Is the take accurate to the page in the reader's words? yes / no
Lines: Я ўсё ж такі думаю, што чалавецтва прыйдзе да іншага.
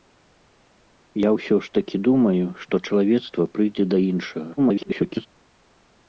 no